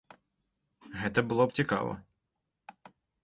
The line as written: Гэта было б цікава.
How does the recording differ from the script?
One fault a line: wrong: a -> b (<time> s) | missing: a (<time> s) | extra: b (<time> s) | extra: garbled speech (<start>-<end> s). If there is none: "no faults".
no faults